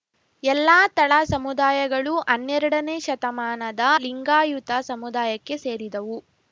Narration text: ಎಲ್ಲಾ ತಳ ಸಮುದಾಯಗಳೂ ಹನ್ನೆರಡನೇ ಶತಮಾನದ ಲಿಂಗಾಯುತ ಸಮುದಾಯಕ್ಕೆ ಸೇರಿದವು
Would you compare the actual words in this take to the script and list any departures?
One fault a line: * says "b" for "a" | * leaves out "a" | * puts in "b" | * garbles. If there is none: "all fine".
all fine